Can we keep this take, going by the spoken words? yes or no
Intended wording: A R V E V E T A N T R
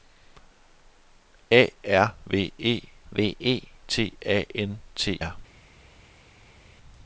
yes